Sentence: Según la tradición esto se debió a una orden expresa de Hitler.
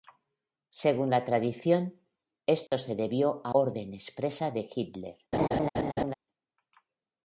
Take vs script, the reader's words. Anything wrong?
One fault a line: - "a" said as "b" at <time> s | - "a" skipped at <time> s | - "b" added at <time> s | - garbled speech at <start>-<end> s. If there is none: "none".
- "una" skipped at 3.5 s